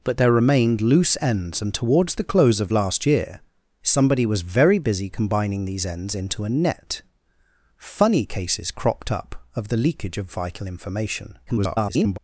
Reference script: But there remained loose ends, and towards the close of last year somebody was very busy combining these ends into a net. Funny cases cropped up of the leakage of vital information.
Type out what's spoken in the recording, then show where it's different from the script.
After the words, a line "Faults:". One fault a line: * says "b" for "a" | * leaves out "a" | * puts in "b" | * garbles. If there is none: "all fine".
But there remained loose ends, and towards the close of last year somebody was very busy combining these ends into a net. Funny cases cropped up of the leakage of vital information. [garbled]
Faults:
* garbles